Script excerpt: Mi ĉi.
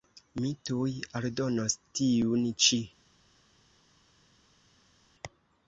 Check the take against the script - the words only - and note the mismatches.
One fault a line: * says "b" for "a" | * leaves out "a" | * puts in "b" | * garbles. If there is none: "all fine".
* puts in "tuj aldonos tiun"